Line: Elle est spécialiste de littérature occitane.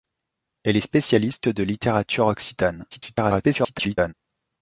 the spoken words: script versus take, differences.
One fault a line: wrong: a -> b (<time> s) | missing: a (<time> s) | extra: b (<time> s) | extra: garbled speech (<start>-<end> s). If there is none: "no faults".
extra: garbled speech (2.9-4.1 s)